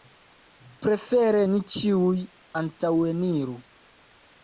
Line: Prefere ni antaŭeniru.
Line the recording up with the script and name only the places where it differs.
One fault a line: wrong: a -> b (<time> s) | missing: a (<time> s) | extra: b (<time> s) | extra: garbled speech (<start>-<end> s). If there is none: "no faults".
extra: ĉiuj (1.7 s)